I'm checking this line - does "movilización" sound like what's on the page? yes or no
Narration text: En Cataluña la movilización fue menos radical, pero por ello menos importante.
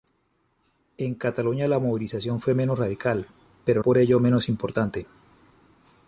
yes